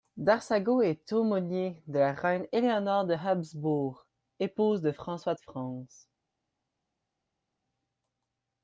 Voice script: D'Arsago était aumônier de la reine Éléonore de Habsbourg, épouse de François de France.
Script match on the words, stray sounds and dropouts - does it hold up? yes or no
no